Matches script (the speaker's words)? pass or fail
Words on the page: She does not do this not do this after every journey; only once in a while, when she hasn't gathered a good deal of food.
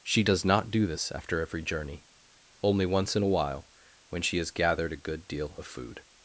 fail